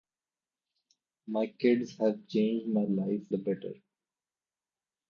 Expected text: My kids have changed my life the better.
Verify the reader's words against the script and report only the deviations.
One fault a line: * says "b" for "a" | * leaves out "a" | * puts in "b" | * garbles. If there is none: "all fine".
all fine